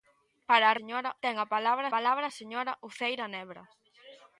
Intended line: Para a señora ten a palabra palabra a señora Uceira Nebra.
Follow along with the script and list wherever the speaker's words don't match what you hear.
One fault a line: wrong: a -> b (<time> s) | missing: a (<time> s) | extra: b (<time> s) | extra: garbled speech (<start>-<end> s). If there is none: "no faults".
no faults